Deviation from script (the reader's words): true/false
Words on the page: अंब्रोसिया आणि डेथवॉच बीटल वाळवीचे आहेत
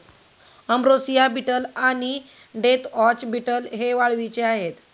true